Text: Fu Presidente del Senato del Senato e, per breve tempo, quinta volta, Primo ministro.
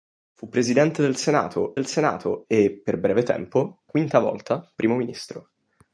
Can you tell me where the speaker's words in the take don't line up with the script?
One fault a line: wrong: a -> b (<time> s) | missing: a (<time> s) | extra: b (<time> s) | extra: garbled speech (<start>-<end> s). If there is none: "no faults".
no faults